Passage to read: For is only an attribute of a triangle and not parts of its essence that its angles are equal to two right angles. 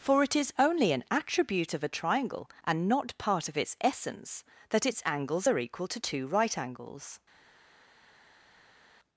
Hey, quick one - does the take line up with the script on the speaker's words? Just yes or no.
no